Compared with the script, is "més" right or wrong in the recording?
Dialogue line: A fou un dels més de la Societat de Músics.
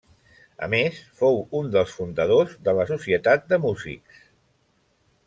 wrong